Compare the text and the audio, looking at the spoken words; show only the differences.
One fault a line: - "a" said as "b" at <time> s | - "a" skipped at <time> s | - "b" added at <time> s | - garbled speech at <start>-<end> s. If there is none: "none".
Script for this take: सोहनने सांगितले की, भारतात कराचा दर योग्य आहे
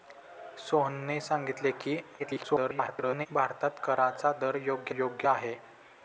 - garbled speech at 2.2-3.3 s
- "योग्य" added at 4.9 s